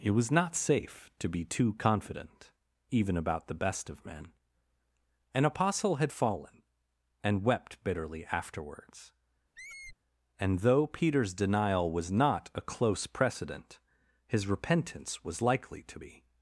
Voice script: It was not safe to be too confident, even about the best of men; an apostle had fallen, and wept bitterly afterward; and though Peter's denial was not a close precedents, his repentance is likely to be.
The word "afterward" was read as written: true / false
false